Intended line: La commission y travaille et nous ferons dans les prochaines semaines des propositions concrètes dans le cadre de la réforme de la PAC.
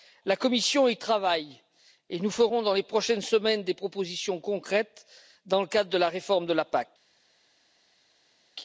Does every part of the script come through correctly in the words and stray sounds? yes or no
yes